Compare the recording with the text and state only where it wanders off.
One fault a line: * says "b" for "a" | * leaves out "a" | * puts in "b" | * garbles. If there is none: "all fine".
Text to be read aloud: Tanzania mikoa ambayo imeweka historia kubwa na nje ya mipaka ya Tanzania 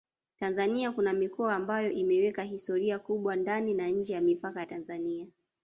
* puts in "kuna"
* puts in "ndani"